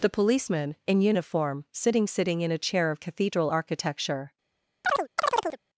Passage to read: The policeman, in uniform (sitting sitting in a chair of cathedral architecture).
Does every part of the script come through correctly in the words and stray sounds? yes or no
no